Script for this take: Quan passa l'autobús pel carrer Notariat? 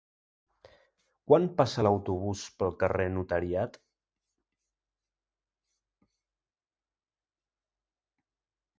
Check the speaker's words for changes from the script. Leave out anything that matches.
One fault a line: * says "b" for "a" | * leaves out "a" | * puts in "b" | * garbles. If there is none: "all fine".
all fine